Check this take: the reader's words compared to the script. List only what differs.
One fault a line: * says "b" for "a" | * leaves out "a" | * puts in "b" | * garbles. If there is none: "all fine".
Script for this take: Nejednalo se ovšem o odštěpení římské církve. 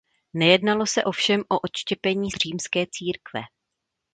all fine